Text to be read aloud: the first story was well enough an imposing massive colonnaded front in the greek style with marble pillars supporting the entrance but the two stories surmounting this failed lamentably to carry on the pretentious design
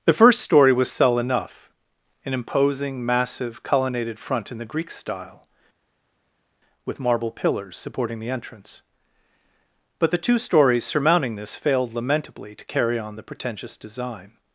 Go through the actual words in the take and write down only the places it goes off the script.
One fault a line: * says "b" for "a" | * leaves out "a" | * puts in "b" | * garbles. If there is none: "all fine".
* says "cell" for "well"